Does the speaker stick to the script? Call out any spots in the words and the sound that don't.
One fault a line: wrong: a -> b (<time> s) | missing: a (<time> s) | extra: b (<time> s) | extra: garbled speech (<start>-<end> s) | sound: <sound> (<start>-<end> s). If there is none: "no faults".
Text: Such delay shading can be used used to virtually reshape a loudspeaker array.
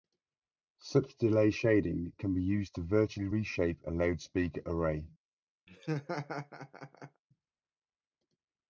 missing: used (2.7 s)
sound: laugh (5.7-7.2 s)